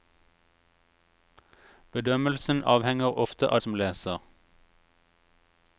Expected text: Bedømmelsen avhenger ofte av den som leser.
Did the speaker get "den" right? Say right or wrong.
wrong